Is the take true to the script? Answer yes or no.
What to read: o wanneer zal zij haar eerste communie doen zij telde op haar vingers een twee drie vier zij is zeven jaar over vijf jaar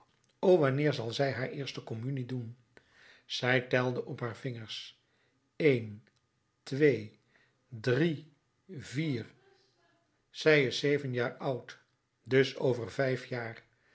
no